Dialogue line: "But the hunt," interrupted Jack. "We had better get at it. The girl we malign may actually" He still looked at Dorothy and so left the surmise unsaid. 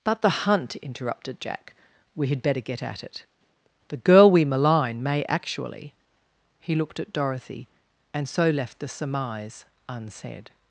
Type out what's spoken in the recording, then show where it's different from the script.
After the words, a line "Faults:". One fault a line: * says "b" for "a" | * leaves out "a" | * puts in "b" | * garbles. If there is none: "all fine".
"But the hunt," interrupted Jack. "We had better get at it. The girl we malign may actually" He looked at Dorothy and so left the surmise unsaid.
Faults:
* leaves out "still"